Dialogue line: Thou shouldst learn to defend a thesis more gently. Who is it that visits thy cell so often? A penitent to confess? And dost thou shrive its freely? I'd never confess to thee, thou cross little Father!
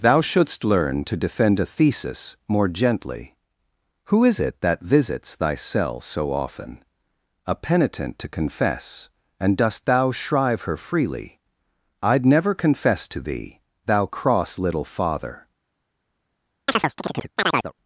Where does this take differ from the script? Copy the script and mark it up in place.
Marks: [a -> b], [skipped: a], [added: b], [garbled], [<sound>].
Thou shouldst learn to defend a thesis more gently. Who is it that visits thy cell so often? A penitent to confess? And dost thou shrive [its -> her] freely? I'd never confess to thee, thou cross little Father! [chirp]